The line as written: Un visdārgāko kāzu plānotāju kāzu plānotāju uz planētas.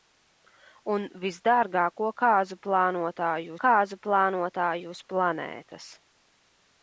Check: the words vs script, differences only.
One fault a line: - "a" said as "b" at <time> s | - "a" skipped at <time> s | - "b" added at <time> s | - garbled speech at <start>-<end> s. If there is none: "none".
none